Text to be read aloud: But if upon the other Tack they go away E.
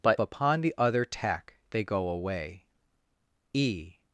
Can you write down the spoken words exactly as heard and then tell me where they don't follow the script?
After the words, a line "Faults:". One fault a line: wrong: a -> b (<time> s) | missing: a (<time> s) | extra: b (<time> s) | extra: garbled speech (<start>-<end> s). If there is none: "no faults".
But upon the other Tack they go away E.
Faults:
missing: if (0.2 s)